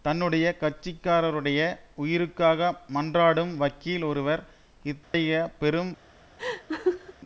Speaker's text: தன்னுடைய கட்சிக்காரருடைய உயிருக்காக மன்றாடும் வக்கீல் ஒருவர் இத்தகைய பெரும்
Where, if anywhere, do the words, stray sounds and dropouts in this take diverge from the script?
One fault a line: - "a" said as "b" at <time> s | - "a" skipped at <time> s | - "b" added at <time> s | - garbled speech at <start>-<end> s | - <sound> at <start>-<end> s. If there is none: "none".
- dropout at 5.0-5.1 s
- laugh at 6.4-7.1 s